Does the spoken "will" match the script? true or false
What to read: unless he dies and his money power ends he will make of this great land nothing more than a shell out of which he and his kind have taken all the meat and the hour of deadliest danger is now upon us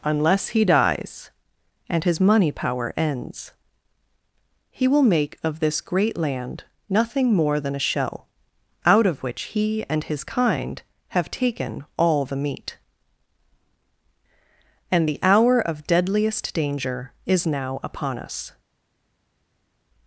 true